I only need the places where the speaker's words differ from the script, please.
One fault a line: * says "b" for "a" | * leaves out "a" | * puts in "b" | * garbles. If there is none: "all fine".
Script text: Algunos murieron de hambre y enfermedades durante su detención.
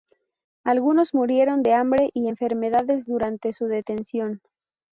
all fine